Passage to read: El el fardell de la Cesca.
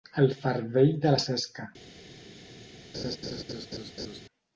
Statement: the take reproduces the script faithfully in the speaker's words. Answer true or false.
false